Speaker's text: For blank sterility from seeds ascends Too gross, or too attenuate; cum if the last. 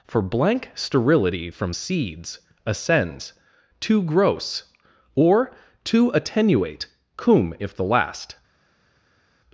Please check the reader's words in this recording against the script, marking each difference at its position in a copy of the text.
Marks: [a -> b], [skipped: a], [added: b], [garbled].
For blank sterility from seeds ascends Too gross, or too attenuate; cum if the last.